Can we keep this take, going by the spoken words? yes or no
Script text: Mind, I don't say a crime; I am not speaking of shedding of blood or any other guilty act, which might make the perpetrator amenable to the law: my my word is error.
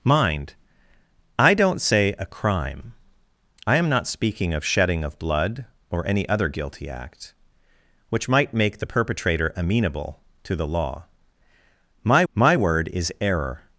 yes